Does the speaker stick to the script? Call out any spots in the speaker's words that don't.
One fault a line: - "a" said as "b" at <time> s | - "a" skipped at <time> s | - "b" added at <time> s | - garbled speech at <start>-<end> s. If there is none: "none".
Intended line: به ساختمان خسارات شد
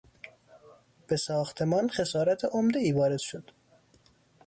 - "عمدهای وارد" added at 2.5 s